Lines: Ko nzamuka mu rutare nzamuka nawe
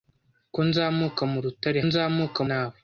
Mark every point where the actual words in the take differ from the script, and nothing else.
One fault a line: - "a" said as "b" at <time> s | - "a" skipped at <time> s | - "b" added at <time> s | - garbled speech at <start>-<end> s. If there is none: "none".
none